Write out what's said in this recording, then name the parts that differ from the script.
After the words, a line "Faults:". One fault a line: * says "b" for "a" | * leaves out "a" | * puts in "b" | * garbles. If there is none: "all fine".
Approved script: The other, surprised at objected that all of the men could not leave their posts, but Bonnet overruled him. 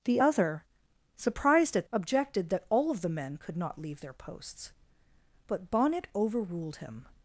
The other, surprised at objected that all of the men could not leave their posts, but Bonnet overruled him.
Faults:
all fine